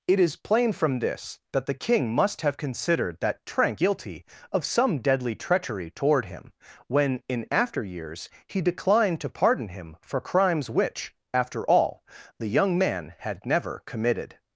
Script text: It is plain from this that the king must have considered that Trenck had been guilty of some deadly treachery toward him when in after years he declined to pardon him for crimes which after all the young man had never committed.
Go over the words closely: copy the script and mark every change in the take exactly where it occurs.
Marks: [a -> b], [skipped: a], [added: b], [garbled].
It is plain from this that the king must have considered that Trenck [skipped: had been] guilty of some deadly treachery toward him when in after years he declined to pardon him for crimes which after all the young man had never committed.